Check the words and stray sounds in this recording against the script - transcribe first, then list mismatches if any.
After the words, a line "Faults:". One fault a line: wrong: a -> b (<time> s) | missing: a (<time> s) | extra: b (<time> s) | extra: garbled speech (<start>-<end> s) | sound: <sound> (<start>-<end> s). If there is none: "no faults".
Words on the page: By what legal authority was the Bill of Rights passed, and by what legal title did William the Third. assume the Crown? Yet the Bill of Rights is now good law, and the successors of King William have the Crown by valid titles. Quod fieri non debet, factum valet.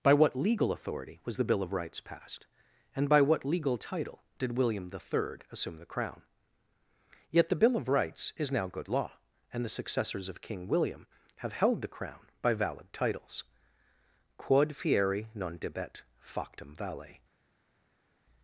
By what legal authority was the Bill of Rights passed, and by what legal title did William the Third. assume the Crown? Yet the Bill of Rights is now good law, and the successors of King William have held the Crown by valid titles. Quod fieri non debet, factum valet.
Faults:
extra: held (11.5 s)